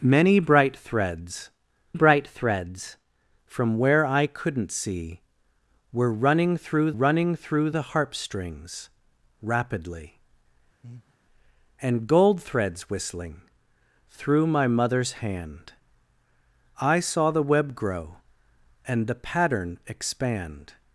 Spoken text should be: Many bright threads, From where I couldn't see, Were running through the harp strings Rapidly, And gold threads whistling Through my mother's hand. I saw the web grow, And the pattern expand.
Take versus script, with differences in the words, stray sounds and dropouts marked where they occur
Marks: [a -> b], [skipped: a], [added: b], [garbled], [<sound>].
Many bright threads, [added: bright threads] From where I couldn't see, Were running through [added: running through] the harp strings Rapidly, [breath] And gold threads whistling Through my mother's hand. I saw the web grow, And the pattern expand.